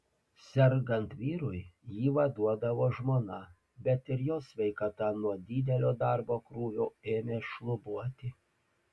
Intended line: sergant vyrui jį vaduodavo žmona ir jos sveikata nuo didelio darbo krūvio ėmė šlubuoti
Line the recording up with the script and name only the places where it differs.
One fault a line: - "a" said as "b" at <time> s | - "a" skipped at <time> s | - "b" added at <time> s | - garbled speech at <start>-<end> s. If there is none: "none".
- "bet" added at 3.9 s